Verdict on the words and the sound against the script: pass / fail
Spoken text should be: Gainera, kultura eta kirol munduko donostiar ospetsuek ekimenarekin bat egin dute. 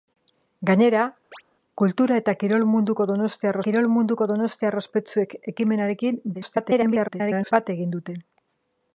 fail